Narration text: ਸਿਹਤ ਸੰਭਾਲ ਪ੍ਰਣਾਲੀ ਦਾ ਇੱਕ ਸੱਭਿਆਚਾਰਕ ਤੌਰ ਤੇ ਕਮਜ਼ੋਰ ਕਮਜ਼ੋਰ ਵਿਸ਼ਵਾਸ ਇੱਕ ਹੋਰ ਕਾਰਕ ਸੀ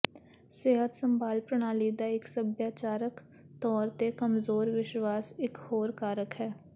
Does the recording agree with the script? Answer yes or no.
no